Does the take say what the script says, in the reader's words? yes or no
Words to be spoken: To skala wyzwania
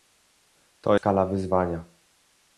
yes